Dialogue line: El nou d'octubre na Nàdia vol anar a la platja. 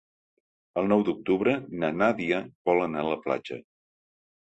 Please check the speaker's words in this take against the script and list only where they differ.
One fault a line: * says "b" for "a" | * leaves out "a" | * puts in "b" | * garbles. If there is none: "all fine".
all fine